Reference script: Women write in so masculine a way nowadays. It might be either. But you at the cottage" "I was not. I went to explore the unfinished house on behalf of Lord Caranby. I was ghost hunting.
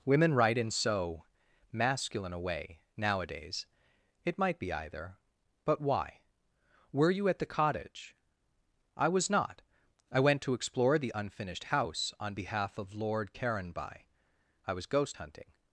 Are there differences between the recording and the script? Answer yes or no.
yes